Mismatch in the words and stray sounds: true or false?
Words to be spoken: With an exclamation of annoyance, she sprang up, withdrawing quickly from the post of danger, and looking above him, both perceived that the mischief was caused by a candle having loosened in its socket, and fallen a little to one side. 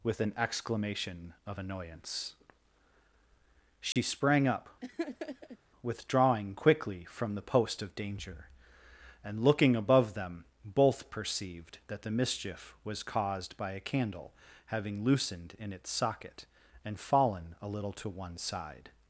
true